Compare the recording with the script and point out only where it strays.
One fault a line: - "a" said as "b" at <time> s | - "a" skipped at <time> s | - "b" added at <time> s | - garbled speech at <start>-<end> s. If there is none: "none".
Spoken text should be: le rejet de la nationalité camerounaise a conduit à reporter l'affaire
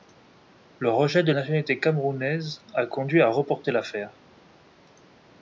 - "la" skipped at 1.3 s